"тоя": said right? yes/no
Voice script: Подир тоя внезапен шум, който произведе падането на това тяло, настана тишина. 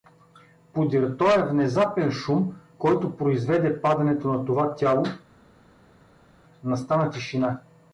yes